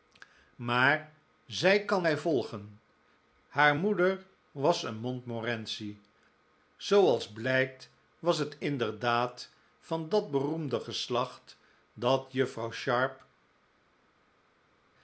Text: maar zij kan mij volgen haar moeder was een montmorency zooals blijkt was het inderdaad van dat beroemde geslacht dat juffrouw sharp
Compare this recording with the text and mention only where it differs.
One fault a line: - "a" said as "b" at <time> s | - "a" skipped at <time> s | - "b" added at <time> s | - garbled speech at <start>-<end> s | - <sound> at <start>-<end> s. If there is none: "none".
none